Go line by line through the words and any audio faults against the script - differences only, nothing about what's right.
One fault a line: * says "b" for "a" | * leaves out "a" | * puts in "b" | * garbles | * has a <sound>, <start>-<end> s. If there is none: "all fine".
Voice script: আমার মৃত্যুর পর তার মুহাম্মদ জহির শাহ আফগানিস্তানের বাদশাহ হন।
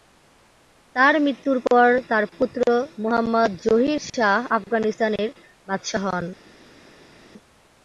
* says "তার" for "আমার"
* puts in "পুত্র"